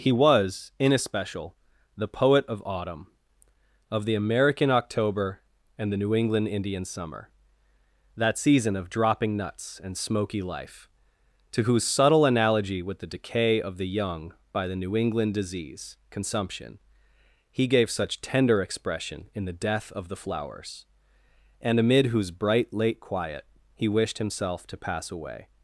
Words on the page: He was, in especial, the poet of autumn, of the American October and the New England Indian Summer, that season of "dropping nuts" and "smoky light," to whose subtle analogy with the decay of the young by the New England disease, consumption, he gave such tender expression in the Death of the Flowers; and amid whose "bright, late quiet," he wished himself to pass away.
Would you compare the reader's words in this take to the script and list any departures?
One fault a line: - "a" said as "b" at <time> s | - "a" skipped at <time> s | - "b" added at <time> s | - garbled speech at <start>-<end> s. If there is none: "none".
- "light" said as "life" at 10.4 s